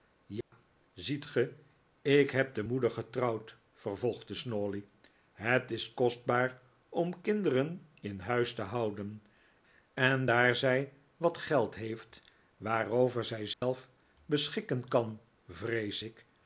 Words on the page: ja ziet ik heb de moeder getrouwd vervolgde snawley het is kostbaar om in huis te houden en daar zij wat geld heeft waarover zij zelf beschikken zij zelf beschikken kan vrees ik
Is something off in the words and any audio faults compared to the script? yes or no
yes